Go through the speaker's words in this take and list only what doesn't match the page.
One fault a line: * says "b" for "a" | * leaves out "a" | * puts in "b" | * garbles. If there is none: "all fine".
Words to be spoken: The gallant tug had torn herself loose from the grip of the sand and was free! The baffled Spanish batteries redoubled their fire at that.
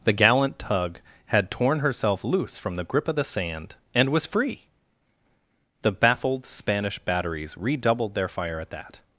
all fine